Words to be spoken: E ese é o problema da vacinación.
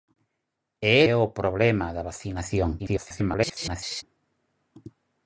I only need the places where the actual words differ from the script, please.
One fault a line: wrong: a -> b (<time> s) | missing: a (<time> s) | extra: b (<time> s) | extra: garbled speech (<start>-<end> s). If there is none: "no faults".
missing: ese (0.9 s)
extra: garbled speech (2.8-4.0 s)